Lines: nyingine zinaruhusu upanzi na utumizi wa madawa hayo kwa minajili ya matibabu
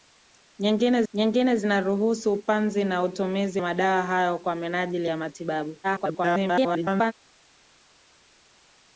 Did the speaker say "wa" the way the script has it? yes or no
no